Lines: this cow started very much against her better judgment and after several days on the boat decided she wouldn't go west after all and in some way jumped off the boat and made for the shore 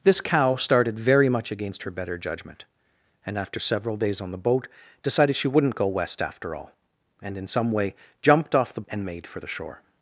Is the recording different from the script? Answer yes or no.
yes